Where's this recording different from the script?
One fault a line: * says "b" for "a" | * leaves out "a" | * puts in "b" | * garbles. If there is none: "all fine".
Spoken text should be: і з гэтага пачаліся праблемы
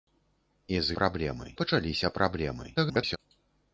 * says "праблемы" for "гэтага"
* garbles